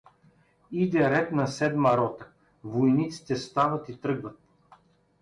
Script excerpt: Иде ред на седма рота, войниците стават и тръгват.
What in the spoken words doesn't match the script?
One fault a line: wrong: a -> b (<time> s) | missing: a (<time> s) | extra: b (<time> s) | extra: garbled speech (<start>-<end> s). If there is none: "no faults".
no faults